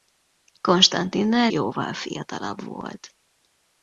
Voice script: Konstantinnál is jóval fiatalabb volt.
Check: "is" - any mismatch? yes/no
yes